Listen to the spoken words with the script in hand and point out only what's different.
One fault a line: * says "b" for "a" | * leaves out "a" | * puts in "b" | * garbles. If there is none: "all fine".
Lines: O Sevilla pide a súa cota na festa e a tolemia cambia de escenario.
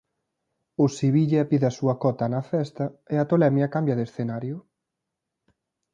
all fine